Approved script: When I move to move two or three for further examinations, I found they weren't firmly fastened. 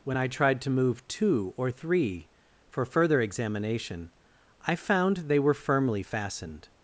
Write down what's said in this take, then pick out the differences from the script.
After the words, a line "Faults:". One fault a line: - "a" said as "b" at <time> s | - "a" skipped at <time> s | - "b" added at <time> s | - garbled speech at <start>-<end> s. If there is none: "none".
When I tried to move two or three for further examination, I found they were firmly fastened.
Faults:
- "move" said as "tried" at 0.3 s
- "examinations" said as "examination" at 3.2 s
- "weren't" said as "were" at 5.4 s